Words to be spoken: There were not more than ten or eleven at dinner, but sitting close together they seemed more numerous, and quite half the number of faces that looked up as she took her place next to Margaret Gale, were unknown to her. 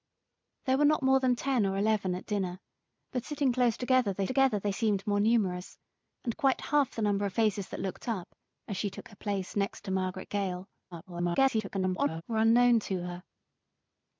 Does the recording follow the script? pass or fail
fail